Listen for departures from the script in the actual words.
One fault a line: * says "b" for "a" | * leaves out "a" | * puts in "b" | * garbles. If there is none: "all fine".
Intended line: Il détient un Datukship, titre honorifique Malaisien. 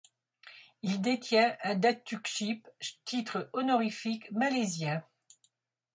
all fine